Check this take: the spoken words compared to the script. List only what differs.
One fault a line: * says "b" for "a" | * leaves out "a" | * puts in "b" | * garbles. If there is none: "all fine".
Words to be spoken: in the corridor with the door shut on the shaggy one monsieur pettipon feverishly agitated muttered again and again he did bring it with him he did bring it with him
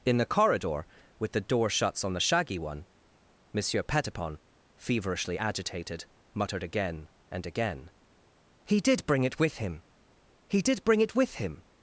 * says "shuts" for "shut"